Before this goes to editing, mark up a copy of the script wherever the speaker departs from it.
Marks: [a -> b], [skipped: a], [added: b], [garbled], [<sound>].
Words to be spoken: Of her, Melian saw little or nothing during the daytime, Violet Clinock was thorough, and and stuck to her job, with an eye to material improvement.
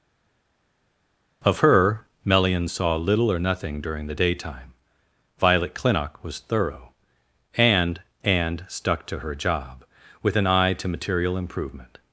Of her, Melian saw little or nothing during the daytime, Violet Clinock was thorough, and and stuck to her job, with an eye to material improvement.